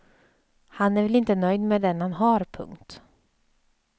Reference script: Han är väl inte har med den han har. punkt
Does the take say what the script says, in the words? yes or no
no